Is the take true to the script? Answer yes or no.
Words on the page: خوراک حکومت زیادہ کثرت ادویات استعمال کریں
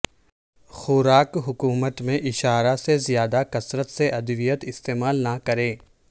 no